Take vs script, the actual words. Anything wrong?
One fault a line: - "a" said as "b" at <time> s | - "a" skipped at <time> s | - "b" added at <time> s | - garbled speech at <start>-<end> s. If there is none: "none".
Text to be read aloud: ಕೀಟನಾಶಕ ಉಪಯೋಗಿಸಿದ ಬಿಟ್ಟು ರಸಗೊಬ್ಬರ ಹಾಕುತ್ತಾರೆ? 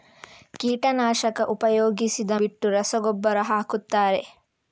none